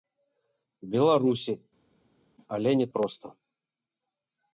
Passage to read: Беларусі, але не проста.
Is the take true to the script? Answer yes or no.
yes